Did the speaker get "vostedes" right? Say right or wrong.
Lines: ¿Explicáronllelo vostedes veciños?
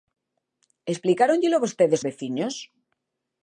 right